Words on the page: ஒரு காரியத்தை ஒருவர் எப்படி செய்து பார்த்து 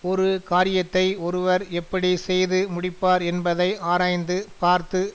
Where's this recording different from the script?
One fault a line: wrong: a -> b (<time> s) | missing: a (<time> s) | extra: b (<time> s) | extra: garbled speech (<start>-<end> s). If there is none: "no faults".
extra: முடிப்பார் என்பதை ஆராய்ந்து (2.7 s)